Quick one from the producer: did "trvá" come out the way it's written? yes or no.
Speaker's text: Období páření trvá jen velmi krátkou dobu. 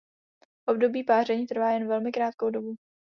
yes